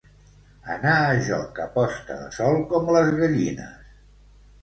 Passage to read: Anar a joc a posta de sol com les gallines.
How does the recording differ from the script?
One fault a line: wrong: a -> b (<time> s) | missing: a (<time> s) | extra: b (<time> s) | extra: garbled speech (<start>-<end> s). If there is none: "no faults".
no faults